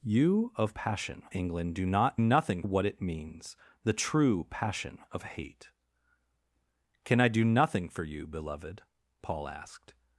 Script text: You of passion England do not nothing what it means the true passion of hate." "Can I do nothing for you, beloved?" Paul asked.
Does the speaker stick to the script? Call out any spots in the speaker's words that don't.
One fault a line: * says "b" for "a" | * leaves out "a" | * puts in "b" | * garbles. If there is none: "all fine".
all fine